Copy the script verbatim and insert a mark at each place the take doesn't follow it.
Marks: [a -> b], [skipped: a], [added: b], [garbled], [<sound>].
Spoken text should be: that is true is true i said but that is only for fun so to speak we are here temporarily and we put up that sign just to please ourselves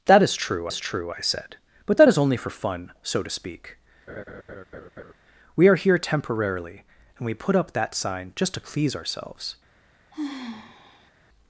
that is true is true i said but that is only for fun so to speak [laugh] we are here temporarily and we put up that sign just to please ourselves [sigh]